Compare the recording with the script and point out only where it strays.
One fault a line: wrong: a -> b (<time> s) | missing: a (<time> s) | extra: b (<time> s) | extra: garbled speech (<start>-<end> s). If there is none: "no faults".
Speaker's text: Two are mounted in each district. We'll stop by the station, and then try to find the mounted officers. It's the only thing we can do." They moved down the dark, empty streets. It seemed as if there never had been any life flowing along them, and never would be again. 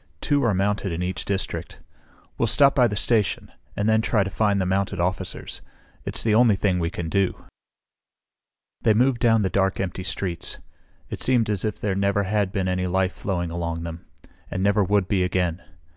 no faults